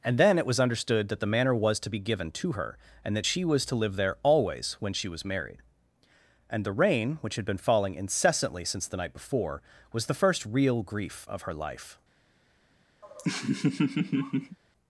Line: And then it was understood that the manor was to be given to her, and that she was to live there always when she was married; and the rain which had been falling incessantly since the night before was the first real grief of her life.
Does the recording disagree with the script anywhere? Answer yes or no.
no